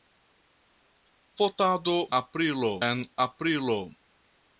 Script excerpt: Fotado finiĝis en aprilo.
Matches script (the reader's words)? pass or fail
fail